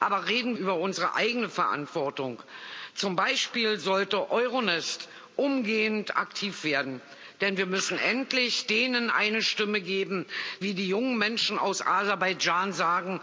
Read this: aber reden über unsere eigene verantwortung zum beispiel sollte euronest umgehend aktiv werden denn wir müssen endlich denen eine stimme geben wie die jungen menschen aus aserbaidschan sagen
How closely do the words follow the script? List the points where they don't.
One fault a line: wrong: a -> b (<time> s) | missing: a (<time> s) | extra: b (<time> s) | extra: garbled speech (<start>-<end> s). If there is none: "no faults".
no faults